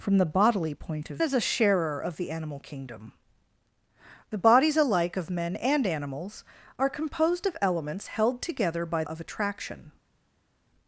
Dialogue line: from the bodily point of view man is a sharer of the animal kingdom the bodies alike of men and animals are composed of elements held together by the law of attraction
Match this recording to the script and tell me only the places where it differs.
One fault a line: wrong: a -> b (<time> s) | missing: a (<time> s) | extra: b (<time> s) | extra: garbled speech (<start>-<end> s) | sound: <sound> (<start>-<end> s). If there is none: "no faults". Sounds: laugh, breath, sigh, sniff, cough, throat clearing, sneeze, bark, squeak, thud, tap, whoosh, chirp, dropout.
missing: view man (1.2 s)
missing: the law (9.0 s)